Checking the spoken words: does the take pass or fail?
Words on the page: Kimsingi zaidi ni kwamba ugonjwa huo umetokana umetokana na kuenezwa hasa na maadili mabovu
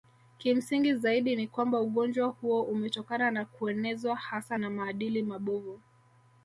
fail